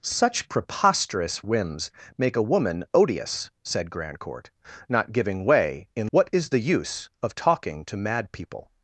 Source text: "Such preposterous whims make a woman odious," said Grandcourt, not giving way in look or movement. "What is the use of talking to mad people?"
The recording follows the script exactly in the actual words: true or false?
false